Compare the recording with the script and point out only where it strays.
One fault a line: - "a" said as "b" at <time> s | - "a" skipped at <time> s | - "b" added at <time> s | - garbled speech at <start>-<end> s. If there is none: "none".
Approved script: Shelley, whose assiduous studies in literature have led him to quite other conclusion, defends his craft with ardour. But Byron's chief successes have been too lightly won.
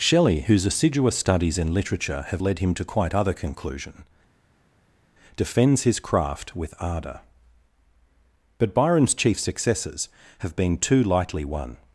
none